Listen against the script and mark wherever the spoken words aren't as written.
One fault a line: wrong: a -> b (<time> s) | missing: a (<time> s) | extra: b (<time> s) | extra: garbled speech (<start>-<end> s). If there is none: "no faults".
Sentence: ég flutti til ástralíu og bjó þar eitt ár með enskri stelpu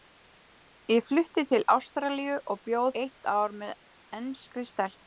missing: þar (2.8 s)